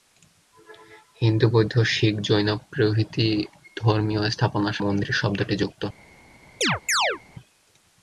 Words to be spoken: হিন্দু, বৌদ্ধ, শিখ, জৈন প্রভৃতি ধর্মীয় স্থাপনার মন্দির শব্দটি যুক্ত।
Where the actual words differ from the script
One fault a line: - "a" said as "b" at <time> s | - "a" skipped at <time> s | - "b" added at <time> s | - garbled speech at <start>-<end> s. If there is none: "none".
none